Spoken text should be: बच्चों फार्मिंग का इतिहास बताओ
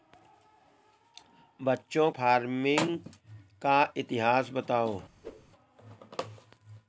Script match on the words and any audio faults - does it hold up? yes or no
no